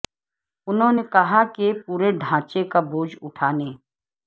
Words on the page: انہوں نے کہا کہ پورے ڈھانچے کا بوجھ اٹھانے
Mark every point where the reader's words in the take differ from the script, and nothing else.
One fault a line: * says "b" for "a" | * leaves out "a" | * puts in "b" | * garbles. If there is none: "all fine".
all fine